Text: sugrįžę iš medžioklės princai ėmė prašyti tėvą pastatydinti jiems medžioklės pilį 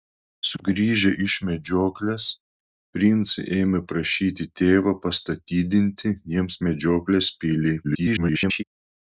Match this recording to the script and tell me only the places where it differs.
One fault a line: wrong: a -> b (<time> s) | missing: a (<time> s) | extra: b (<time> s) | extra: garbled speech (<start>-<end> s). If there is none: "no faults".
extra: garbled speech (7.8-8.6 s)